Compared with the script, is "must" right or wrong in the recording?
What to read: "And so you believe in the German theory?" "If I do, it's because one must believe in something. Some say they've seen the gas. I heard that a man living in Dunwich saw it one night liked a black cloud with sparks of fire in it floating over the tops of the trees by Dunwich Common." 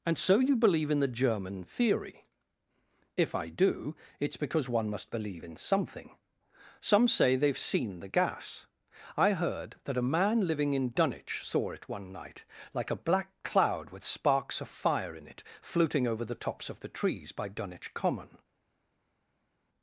right